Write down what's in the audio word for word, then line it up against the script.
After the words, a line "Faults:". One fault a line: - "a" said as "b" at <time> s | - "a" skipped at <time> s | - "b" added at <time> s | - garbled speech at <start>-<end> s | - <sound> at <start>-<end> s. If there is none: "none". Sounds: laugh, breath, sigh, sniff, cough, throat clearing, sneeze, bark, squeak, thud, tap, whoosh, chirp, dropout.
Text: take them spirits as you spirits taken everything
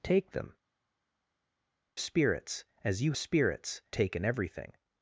take them spirits as you spirits taken everything
Faults:
none